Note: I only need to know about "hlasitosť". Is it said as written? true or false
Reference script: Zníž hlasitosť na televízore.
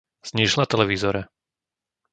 false